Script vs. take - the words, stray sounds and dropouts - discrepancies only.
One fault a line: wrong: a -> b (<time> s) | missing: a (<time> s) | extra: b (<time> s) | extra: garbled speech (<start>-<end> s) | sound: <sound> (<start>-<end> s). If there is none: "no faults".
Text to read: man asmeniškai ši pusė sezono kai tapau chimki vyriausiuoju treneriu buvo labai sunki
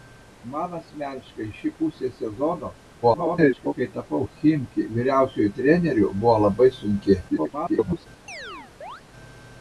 extra: garbled speech (3.0-3.7 s)
extra: garbled speech (7.3-8.1 s)
sound: chirp (8.3-9.0 s)